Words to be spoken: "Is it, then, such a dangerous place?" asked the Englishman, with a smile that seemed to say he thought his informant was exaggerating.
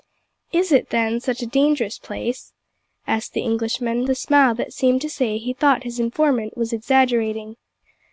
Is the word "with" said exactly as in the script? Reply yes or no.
no